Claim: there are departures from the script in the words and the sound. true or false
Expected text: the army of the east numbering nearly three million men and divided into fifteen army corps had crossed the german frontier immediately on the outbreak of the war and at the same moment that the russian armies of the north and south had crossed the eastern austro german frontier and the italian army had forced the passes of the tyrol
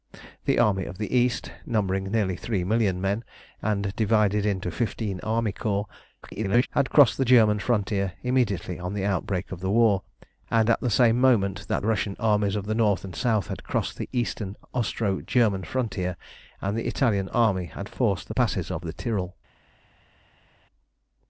true